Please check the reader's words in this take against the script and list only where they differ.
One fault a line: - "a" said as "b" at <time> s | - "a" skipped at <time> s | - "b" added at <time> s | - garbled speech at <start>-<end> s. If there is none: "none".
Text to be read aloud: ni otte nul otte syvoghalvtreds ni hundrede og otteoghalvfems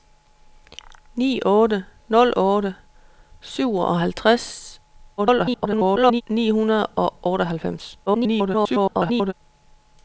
- garbled speech at 5.2-6.2 s
- garbled speech at 8.1-9.3 s